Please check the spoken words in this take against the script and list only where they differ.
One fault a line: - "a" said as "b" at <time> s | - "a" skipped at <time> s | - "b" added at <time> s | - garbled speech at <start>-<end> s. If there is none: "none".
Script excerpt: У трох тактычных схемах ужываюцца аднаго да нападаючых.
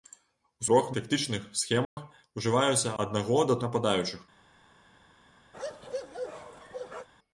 none